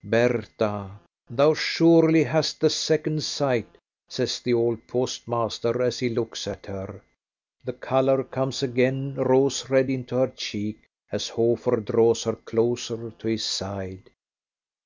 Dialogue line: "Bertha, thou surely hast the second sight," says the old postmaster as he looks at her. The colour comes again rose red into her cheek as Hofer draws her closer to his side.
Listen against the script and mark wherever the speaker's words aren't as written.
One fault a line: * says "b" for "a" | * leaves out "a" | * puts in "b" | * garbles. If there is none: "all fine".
all fine